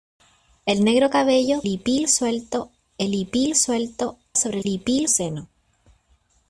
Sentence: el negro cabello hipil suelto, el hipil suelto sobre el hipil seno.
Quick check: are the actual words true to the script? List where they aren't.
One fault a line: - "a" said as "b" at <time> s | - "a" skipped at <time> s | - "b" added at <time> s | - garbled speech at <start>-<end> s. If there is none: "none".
none